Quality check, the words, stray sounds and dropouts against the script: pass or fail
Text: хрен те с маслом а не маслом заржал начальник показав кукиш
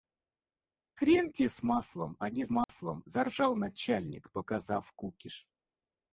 fail